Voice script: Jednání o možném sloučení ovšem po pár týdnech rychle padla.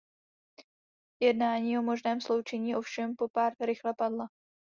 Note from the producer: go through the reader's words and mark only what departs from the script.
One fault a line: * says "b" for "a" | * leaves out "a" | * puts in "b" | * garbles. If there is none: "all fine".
* leaves out "týdnech"